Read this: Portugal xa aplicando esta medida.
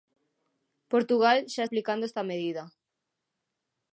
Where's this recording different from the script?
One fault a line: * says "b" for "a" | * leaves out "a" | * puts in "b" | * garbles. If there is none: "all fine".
all fine